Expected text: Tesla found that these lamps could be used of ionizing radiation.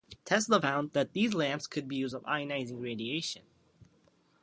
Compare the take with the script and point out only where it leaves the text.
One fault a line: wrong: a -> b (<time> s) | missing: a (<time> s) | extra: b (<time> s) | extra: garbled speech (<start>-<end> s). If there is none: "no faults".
no faults